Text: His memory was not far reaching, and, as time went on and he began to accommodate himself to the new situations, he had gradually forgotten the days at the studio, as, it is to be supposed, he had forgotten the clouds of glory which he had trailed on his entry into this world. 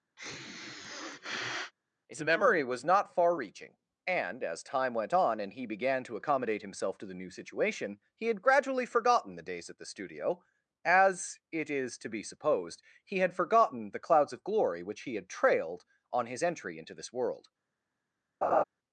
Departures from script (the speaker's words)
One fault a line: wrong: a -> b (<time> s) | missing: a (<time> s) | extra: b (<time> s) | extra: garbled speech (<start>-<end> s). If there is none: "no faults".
wrong: situations -> situation (7.3 s)